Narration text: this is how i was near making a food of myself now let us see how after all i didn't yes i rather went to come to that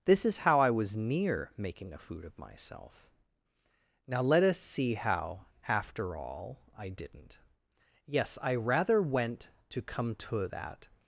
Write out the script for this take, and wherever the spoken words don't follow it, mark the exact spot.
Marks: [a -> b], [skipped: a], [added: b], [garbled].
this is how i was near making a food of myself now let us see how after all i didn't yes i rather went to come to that